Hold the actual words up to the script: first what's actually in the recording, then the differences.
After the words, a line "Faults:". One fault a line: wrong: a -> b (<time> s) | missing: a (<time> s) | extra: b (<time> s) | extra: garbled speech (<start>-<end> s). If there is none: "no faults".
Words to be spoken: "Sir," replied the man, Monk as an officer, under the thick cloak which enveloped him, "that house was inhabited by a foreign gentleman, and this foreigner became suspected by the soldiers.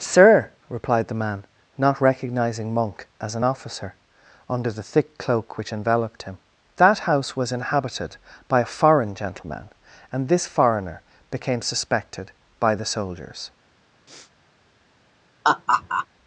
"Sir," replied the man, not recognizing Monk as an officer, under the thick cloak which enveloped him, "that house was inhabited by a foreign gentleman, and this foreigner became suspected by the soldiers.
Faults:
extra: not recognizing (1.8 s)